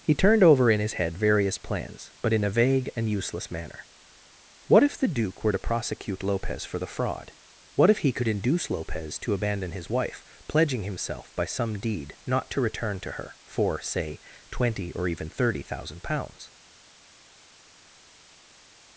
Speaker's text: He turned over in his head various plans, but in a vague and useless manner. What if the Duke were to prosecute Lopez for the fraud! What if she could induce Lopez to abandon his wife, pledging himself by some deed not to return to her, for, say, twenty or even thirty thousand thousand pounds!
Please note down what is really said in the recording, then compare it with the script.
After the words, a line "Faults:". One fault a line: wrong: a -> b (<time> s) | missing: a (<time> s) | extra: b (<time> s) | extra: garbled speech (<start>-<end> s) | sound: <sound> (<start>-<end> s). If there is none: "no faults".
He turned over in his head various plans, but in a vague and useless manner. What if the Duke were to prosecute Lopez for the fraud! What if he could induce Lopez to abandon his wife, pledging himself by some deed not to return to her, for, say, twenty or even thirty thousand pounds!
Faults:
wrong: she -> he (8.0 s)
missing: thousand (16.0 s)